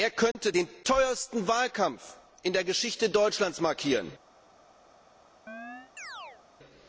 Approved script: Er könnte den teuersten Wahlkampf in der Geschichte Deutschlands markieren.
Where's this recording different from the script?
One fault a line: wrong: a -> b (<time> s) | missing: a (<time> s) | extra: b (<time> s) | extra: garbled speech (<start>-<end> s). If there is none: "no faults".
no faults